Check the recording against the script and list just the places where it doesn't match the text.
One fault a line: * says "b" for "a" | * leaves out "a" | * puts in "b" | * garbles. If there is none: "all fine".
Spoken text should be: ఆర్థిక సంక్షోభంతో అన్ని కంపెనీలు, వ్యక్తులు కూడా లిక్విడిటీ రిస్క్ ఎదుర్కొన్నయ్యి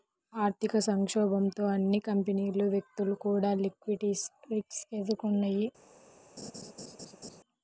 all fine